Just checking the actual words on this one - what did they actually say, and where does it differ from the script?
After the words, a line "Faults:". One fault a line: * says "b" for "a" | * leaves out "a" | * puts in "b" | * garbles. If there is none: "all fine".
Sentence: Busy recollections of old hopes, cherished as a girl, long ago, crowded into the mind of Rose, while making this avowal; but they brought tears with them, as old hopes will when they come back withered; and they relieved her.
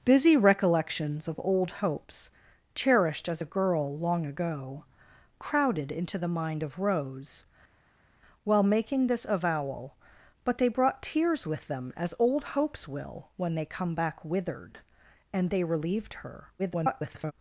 Busy recollections of old hopes, cherished as a girl, long ago, crowded into the mind of Rose, while making this avowal; but they brought tears with them, as old hopes will when they come back withered; and they relieved her. [garbled]
Faults:
* garbles